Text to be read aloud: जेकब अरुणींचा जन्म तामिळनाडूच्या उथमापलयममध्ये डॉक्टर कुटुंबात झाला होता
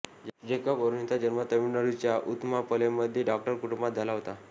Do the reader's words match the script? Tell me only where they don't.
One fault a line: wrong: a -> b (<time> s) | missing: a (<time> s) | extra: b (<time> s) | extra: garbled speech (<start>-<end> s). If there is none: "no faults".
no faults